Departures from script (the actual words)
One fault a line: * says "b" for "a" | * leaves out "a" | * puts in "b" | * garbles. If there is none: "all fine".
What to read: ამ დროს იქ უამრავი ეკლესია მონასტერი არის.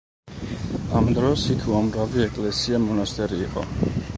* says "იყო" for "არის"